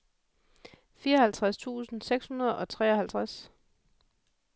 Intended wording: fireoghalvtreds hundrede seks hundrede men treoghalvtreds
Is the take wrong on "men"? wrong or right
wrong